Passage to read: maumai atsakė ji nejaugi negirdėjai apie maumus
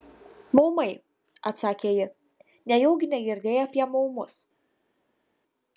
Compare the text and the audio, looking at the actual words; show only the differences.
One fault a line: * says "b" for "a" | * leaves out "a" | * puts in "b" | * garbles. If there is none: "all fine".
all fine